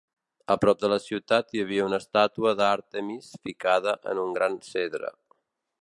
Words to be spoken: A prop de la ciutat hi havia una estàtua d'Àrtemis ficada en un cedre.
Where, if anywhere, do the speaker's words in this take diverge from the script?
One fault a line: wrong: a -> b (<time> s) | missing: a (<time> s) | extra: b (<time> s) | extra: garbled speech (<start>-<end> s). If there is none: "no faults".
extra: gran (4.4 s)